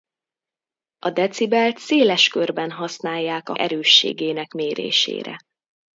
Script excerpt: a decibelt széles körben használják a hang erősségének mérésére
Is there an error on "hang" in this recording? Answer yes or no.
yes